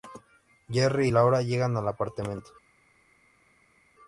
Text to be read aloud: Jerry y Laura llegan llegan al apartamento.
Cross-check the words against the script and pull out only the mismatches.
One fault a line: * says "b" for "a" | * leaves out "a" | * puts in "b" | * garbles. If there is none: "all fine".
* leaves out "llegan"